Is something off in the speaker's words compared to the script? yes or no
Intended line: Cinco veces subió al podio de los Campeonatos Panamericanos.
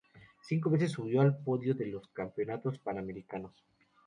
no